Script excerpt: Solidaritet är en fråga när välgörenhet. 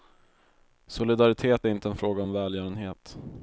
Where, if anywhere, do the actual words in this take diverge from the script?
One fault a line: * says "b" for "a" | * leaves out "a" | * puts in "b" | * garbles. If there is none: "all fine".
* puts in "inte"
* says "om" for "när"